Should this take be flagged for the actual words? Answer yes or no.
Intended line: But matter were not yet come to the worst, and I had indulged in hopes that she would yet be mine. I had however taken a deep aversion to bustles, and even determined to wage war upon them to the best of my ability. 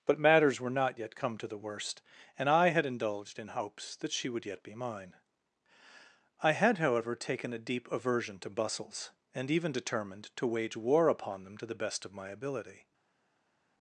yes